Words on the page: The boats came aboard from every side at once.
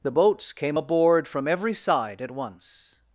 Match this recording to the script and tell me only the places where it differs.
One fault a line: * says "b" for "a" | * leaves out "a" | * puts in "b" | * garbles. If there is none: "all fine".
all fine